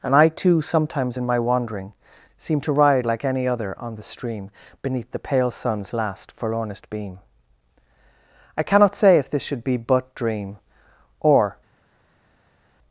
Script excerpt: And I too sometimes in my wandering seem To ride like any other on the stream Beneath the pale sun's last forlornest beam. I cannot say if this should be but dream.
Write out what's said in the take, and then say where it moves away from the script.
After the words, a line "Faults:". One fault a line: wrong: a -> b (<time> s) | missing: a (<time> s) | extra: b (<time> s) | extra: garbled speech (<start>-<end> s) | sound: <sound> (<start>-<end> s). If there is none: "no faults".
And I too sometimes in my wandering seem To ride like any other on the stream Beneath the pale sun's last forlornest beam. I cannot say if this should be but dream. Or
Faults:
extra: Or (11.2 s)